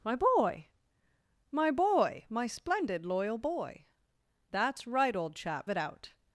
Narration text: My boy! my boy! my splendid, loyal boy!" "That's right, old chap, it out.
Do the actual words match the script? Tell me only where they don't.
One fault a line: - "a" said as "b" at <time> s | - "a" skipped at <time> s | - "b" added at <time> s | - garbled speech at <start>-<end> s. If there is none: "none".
none